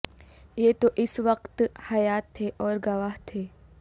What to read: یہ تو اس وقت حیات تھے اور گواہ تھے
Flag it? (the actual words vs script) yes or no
no